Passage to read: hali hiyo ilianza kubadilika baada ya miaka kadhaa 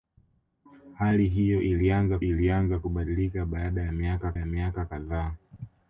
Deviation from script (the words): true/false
true